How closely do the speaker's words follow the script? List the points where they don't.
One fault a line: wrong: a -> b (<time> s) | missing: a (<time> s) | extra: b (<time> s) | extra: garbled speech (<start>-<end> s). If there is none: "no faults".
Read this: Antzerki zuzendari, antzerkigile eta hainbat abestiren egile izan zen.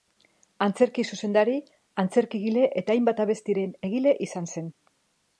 no faults